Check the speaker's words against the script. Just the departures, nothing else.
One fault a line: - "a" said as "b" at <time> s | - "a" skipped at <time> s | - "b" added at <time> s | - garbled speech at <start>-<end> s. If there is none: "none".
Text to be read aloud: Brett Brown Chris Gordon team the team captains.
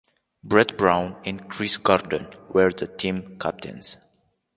- "and" added at 1.2 s
- "team" said as "were" at 2.5 s